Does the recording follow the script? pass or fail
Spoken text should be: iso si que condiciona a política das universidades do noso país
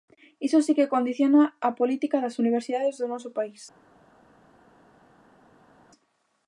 pass